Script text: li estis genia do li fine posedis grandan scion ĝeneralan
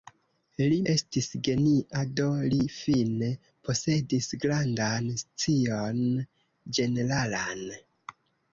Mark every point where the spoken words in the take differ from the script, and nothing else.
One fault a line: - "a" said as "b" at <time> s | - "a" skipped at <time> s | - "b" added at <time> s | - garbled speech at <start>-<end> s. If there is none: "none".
none